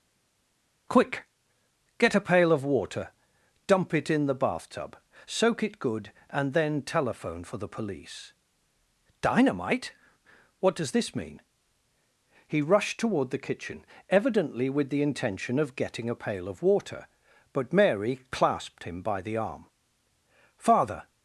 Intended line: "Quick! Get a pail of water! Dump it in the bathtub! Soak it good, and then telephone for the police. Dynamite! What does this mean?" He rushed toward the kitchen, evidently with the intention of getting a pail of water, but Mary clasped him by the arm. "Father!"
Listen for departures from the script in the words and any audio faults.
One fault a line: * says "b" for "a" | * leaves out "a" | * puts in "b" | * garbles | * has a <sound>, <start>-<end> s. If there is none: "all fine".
all fine